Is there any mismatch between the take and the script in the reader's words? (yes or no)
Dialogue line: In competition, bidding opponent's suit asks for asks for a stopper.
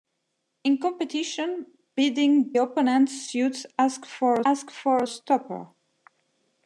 no